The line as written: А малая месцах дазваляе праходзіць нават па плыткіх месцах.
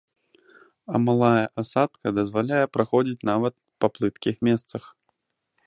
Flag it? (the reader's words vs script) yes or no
yes